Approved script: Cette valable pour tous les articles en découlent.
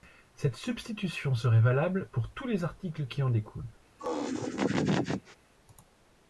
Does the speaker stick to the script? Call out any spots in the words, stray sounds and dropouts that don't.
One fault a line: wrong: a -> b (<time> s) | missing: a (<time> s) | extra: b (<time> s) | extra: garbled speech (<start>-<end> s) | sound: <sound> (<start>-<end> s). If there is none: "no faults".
extra: substitution serait (0.6 s)
extra: qui (3.0 s)
sound: laugh (4.0-5.4 s)